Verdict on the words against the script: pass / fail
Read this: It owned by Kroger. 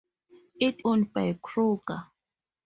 pass